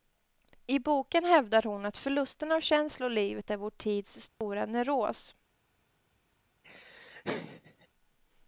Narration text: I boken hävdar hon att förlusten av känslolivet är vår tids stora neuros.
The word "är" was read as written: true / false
true